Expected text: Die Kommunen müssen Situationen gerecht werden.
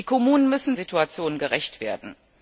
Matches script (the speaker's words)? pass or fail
pass